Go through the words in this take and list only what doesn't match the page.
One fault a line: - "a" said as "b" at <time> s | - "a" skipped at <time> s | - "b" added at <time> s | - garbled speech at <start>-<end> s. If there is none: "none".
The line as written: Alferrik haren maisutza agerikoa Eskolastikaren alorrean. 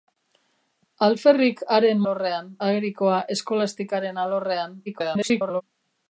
- "maisutza" said as "alorrean" at 2.0 s
- garbled speech at 4.9-5.6 s